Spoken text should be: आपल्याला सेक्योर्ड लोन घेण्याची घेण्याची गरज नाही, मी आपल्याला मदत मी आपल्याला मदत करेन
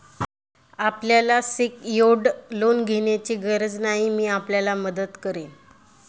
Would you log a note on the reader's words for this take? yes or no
yes